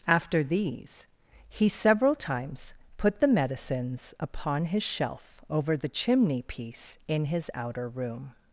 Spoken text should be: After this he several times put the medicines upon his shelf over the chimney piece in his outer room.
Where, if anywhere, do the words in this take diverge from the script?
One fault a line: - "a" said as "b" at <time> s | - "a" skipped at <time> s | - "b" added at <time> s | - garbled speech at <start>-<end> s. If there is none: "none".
- "this" said as "these" at 0.4 s